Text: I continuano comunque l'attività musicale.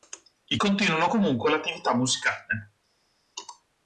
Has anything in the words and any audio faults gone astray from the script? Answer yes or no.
no